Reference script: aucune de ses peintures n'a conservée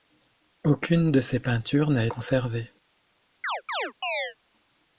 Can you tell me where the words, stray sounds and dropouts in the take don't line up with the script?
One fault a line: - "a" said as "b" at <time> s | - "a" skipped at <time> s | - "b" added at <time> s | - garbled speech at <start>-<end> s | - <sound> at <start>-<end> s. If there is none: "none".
- chirp at 3.4-4.4 s